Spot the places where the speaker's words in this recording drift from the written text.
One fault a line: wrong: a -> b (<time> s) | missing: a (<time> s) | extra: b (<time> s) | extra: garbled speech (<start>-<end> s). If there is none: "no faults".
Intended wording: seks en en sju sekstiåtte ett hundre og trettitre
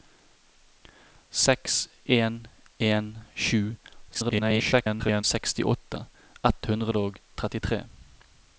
extra: garbled speech (4.1-5.2 s)